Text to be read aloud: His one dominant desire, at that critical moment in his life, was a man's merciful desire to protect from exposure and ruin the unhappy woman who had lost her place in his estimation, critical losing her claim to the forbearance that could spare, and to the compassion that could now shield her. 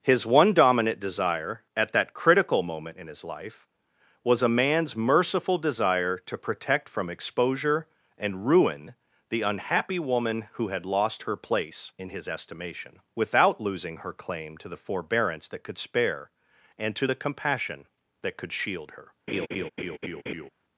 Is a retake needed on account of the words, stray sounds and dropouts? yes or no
yes